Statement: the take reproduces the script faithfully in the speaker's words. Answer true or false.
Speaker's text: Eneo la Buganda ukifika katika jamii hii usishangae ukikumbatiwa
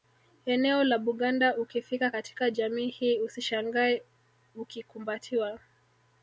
true